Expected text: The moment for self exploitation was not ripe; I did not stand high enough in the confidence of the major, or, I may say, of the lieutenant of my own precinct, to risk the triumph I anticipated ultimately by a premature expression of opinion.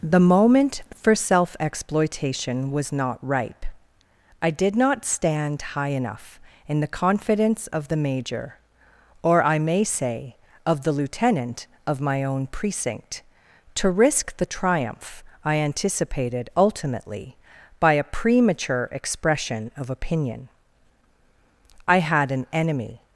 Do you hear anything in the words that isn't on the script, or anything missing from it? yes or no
yes